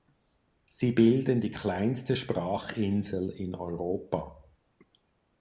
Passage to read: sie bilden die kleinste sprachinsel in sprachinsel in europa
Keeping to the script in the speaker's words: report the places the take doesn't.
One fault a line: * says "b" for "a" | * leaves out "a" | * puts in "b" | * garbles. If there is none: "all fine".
* leaves out "sprachinsel in"